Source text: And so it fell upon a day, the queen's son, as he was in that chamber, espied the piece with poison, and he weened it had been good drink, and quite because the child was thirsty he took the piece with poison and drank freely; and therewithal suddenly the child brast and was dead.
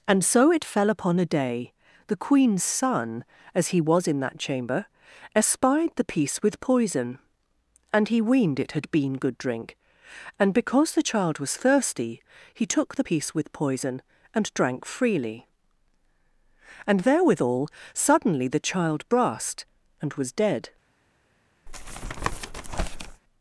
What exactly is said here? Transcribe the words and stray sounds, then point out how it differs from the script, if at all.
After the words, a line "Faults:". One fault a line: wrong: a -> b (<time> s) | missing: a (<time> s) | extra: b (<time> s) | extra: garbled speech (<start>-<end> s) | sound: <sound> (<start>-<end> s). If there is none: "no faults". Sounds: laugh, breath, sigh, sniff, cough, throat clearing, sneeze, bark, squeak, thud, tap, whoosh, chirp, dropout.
And so it fell upon a day, the queen's son, as he was in that chamber, espied the piece with poison, and he weened it had been good drink, and because the child was thirsty he took the piece with poison and drank freely; and therewithal suddenly the child brast and was dead.
Faults:
missing: quite (10.5 s)
sound: tap (21.7-23.2 s)